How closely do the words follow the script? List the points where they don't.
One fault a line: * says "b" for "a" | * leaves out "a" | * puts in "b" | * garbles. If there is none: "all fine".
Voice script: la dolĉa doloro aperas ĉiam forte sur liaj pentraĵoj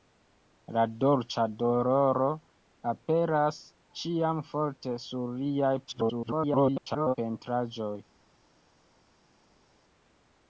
* garbles